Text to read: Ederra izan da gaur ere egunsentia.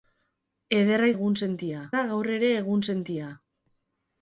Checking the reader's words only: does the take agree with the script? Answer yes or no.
no